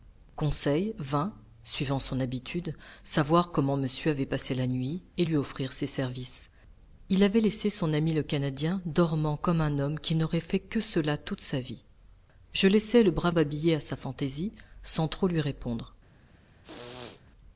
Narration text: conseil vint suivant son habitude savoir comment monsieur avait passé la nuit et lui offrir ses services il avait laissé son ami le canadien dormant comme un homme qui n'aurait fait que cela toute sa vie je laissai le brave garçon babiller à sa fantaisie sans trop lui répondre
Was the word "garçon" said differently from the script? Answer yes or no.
yes